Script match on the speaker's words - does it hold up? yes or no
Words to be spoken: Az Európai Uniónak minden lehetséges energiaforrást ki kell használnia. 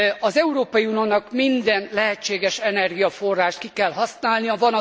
yes